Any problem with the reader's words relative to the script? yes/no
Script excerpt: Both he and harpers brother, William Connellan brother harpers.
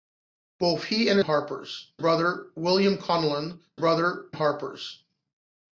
no